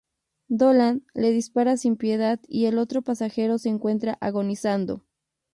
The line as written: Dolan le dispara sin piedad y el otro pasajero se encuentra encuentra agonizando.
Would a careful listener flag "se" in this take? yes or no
no